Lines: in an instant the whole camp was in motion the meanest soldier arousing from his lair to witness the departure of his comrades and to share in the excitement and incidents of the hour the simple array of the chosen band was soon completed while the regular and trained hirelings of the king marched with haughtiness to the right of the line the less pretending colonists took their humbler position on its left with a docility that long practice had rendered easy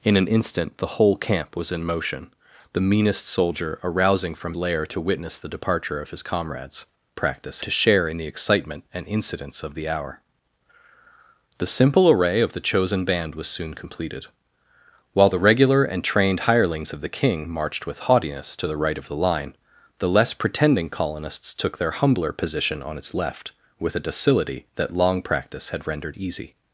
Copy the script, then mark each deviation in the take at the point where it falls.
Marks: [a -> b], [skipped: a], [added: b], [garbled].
in an instant the whole camp was in motion the meanest soldier arousing from [skipped: his] lair to witness the departure of his comrades [and -> practice] to share in the excitement and incidents of the hour the simple array of the chosen band was soon completed while the regular and trained hirelings of the king marched with haughtiness to the right of the line the less pretending colonists took their humbler position on its left with a docility that long practice had rendered easy